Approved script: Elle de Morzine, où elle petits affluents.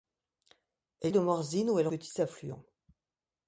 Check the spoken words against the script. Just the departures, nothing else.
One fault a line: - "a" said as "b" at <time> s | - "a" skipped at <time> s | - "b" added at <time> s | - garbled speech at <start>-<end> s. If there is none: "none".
none